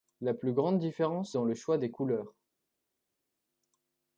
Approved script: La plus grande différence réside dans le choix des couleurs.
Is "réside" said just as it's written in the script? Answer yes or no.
no